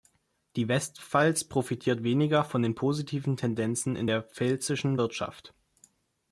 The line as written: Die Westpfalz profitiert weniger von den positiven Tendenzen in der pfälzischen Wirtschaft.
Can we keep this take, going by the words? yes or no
yes